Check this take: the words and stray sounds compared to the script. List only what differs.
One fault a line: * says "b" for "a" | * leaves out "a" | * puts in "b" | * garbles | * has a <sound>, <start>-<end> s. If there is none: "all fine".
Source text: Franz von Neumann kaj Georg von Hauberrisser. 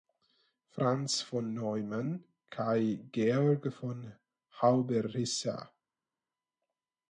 all fine